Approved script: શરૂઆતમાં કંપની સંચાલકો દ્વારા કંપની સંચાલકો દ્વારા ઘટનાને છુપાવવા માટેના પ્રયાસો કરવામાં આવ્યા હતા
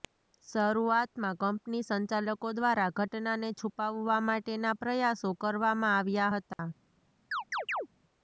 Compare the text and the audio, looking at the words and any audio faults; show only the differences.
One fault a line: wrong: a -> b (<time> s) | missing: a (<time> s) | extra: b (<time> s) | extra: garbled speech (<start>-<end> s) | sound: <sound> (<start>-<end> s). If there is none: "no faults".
missing: કંપની સંચાલકો દ્વારા (2.9 s)
sound: dropout (6.5-6.6 s)
sound: chirp (7.3-7.9 s)